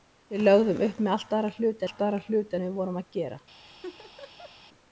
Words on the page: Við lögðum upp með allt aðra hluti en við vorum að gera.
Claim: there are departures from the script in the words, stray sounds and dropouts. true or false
true